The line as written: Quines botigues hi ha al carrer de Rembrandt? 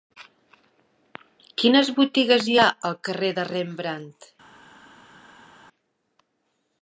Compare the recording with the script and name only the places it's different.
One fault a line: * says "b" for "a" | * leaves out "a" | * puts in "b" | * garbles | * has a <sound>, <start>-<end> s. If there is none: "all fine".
all fine